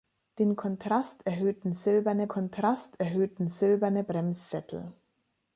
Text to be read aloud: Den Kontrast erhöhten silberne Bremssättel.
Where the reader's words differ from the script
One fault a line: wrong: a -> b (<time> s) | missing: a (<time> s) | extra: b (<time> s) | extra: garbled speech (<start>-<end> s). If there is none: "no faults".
extra: Kontrast erhöhten silberne (2.3 s)